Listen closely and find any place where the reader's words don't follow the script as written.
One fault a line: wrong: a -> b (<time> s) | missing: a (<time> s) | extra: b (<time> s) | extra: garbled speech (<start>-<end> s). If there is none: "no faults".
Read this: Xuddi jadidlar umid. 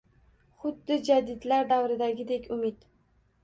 extra: davridagidek (1.8 s)